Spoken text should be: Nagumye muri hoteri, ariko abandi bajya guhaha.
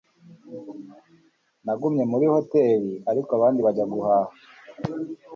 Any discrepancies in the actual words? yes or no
no